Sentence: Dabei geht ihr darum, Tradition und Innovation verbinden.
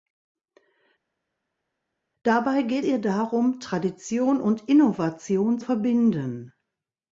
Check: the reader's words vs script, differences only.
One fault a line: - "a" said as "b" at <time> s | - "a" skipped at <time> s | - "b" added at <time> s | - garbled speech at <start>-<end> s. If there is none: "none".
none